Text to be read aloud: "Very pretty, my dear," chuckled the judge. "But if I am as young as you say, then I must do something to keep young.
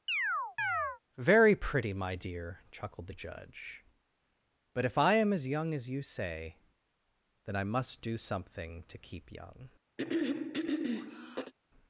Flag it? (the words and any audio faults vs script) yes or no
yes